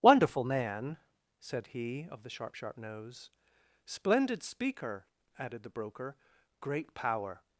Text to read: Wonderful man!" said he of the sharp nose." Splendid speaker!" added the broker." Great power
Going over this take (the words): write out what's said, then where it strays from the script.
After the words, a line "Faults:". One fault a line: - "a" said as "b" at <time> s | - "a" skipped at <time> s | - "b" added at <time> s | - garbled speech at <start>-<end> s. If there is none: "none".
Wonderful man!" said he of the sharp sharp nose." Splendid speaker!" added the broker." Great power
Faults:
- "sharp" added at 2.5 s